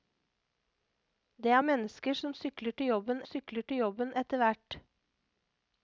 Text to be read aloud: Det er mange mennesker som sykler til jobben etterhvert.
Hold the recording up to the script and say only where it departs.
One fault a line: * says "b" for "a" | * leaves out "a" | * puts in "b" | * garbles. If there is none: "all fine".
* leaves out "mange"
* puts in "sykler til jobben"